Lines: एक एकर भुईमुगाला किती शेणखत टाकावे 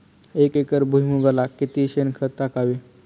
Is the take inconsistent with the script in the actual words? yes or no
no